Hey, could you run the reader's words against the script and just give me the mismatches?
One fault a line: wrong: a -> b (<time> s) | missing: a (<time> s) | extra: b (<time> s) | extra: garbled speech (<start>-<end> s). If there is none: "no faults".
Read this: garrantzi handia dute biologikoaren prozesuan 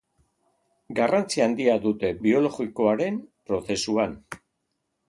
no faults